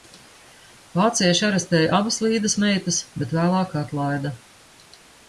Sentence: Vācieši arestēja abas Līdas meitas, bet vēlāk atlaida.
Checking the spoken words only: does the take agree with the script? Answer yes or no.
yes